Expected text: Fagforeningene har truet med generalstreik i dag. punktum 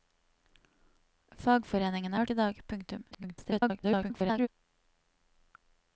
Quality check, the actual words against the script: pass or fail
fail